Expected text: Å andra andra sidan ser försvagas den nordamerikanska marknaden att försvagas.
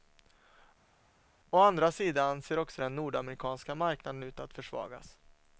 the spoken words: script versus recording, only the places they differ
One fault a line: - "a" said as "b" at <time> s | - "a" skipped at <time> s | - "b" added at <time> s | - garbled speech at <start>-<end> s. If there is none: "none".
- "andra" skipped at 1.9 s
- "försvagas" said as "också" at 2.6 s
- "ut" added at 4.2 s